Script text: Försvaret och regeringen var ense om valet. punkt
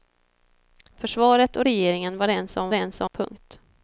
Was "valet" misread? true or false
true